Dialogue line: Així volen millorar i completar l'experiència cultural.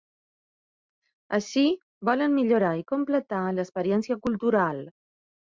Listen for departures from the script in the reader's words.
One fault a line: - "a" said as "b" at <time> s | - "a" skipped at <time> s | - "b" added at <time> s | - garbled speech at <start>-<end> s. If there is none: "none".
none